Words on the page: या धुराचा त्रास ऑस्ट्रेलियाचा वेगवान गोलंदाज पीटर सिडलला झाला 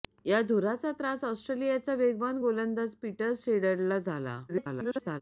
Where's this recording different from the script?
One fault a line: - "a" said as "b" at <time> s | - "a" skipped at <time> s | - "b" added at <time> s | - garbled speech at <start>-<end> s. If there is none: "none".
- garbled speech at 4.5-5.2 s